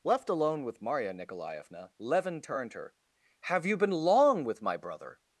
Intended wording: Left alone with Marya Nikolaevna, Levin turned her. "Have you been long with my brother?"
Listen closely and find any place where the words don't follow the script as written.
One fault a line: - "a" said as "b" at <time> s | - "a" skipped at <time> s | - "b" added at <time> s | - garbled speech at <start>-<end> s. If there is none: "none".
none